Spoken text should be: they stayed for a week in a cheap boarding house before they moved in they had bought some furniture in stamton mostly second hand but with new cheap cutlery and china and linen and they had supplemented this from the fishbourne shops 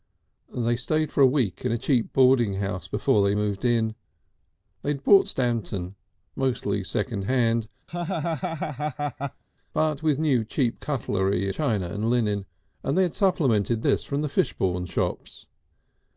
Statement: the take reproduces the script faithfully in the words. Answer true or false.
false